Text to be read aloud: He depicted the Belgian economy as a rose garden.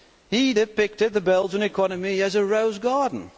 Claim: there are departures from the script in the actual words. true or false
false